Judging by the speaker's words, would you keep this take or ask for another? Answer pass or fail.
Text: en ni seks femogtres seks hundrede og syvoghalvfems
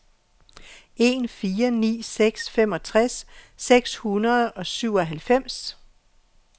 fail